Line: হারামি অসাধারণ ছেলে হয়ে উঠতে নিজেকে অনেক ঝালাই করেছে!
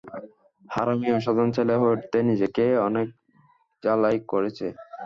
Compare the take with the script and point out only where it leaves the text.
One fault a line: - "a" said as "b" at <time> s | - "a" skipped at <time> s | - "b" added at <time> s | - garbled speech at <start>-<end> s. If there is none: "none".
none